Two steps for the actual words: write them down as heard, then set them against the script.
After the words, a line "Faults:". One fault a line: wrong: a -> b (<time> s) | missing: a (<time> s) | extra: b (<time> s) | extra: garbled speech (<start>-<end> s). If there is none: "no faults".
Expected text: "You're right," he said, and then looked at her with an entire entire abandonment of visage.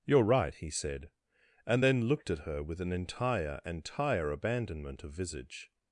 "You're right," he said, and then looked at her with an entire entire abandonment of visage.
Faults:
no faults